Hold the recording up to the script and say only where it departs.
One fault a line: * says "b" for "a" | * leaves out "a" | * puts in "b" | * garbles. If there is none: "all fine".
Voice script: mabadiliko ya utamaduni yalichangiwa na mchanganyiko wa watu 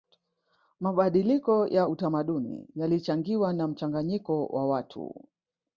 all fine